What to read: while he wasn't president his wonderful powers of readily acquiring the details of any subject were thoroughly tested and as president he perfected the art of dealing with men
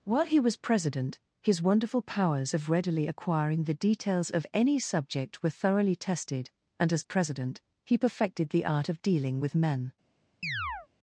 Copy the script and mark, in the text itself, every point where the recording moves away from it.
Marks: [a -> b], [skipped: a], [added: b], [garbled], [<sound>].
while he [wasn't -> was] president his wonderful powers of readily acquiring the details of any subject were thoroughly tested and as president he perfected the art of dealing with men [chirp]